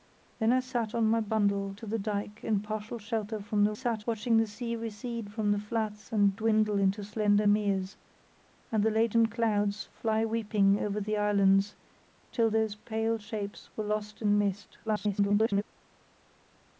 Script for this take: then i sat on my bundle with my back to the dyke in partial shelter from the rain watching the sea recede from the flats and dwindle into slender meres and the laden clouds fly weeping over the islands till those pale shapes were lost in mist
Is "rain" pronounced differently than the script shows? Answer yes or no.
yes